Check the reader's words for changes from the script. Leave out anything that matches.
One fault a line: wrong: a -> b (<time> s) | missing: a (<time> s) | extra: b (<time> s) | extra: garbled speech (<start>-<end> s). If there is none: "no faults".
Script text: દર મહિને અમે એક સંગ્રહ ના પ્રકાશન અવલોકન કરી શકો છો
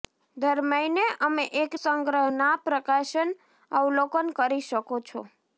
no faults